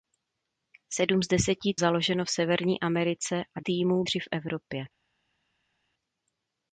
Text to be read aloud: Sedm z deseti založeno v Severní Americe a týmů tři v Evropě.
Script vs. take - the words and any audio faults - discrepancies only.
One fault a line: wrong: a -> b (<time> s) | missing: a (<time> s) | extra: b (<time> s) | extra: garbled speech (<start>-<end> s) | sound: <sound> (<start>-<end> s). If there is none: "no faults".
no faults